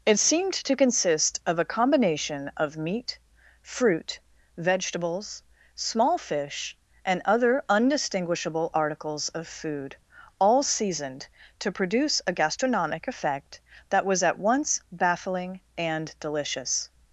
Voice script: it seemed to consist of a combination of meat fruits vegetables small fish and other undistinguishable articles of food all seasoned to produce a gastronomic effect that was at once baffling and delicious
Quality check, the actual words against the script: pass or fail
fail